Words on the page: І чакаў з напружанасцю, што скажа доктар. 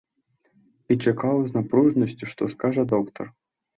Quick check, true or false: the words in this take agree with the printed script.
true